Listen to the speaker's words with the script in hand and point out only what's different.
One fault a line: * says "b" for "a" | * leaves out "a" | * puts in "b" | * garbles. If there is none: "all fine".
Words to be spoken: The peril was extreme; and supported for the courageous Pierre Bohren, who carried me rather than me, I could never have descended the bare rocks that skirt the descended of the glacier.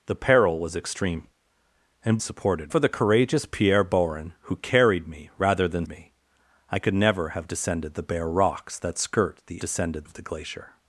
all fine